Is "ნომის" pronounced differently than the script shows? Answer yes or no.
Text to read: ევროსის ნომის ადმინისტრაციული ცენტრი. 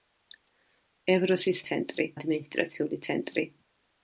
yes